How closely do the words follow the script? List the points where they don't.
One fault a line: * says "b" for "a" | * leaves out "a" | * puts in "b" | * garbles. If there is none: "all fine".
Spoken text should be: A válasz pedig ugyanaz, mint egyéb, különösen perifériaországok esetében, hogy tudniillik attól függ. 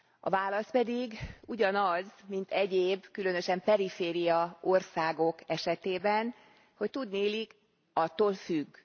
all fine